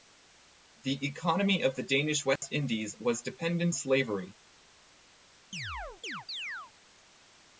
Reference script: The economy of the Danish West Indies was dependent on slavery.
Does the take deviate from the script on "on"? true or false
true